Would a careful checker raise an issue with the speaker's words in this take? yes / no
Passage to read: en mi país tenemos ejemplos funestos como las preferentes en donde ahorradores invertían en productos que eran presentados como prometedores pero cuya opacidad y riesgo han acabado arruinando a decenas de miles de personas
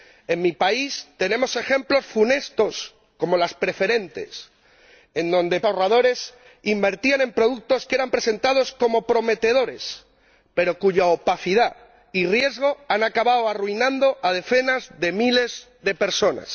no